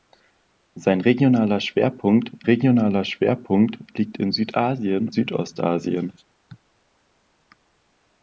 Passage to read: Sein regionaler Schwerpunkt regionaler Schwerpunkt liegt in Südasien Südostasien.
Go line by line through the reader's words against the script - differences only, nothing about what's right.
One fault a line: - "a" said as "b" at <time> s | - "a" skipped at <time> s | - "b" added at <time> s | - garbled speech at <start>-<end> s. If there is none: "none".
none